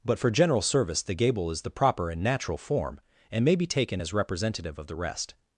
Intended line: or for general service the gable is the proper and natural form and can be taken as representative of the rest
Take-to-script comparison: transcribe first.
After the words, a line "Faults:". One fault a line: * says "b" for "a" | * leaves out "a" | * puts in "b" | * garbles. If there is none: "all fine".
but for general service the gable is the proper and natural form and may be taken as representative of the rest
Faults:
* says "but" for "or"
* says "may" for "can"